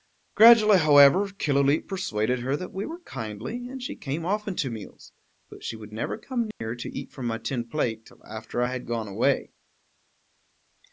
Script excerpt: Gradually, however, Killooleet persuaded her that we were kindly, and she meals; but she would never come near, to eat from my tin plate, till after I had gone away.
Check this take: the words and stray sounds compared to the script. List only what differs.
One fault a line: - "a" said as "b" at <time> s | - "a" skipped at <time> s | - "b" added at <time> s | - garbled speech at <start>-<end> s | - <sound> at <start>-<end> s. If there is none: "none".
- "came often to" added at 4.0 s
- dropout at 6.5-6.6 s